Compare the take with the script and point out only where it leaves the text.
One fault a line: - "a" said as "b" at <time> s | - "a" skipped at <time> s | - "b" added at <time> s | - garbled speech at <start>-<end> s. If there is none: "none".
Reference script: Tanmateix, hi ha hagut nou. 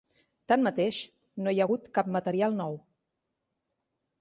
- "no" added at 1.4 s
- "cap material" added at 2.0 s